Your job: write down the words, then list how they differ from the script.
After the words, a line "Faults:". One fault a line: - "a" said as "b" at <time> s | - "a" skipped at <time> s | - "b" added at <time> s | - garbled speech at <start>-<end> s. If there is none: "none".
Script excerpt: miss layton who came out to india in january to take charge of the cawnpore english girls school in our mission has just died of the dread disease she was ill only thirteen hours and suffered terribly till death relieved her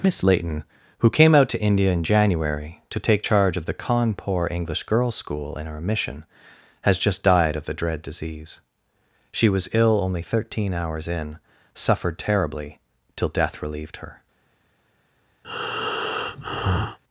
miss layton who came out to india in january to take charge of the cawnpore english girls school in our mission has just died of the dread disease she was ill only thirteen hours in suffered terribly till death relieved her
Faults:
- "and" said as "in" at 11.1 s